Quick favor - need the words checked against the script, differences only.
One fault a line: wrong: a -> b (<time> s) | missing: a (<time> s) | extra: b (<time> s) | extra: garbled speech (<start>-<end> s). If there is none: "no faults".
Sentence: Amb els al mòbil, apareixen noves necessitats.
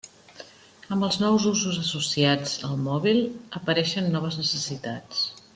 extra: nous usos associats (1.2 s)